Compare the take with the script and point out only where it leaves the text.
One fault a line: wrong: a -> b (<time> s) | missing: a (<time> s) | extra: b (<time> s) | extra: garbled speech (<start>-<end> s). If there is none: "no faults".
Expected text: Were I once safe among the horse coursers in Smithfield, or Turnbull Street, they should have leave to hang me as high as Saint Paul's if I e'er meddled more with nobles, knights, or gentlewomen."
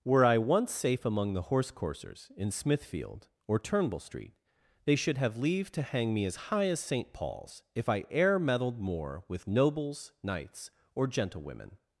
no faults